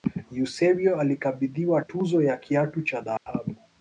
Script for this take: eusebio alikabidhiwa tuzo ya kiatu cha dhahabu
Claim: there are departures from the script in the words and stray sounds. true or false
true